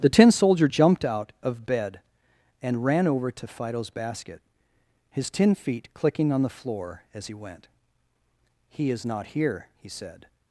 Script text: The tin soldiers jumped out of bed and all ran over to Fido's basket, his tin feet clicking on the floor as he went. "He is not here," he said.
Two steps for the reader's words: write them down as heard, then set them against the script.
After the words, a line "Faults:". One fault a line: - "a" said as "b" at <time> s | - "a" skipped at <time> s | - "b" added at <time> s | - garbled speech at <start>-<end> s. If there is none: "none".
The tin soldier jumped out of bed and ran over to Fido's basket, his tin feet clicking on the floor as he went. "He is not here," he said.
Faults:
- "soldiers" said as "soldier" at 0.3 s
- "all" skipped at 2.8 s